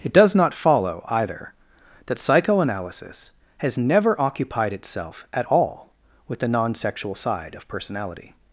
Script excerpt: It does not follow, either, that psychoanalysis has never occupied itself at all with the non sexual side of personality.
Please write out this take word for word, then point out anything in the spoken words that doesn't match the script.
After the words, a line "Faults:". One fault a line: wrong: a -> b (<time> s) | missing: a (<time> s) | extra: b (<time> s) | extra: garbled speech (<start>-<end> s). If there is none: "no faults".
It does not follow, either, that psychoanalysis has never occupied itself at all with the non sexual side of personality.
Faults:
no faults